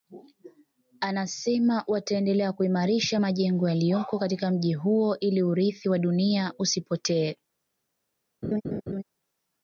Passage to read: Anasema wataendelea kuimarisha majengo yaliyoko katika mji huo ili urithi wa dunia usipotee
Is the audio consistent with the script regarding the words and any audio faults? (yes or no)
no